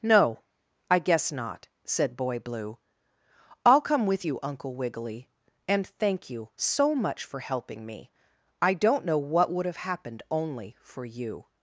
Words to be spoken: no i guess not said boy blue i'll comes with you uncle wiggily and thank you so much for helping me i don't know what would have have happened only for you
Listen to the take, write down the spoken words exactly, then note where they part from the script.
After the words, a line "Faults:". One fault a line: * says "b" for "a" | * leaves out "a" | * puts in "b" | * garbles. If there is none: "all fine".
no i guess not said boy blue i'll come with you uncle wiggily and thank you so much for helping me i don't know what would have happened only for you
Faults:
* says "come" for "comes"
* leaves out "have"